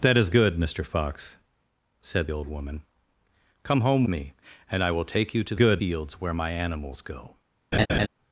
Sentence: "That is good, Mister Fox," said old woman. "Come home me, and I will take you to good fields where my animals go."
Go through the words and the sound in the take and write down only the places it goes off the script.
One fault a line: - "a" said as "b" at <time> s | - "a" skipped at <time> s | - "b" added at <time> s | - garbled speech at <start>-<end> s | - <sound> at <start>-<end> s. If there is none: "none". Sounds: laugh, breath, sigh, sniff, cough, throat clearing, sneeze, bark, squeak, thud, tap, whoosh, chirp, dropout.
- laugh at 7.7-8.1 s